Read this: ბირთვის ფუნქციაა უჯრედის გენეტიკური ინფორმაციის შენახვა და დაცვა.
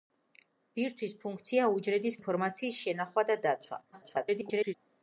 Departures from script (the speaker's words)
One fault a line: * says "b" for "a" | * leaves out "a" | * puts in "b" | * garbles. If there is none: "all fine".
* leaves out "გენეტიკური"
* garbles